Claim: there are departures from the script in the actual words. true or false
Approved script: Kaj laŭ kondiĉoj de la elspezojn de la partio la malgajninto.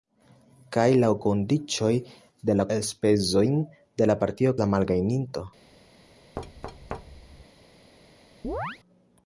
false